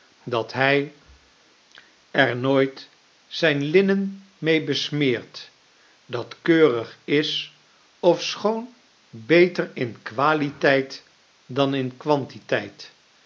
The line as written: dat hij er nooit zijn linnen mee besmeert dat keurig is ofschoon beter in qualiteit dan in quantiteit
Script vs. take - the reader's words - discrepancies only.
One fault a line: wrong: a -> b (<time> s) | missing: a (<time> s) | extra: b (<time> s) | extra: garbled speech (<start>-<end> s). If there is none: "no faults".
no faults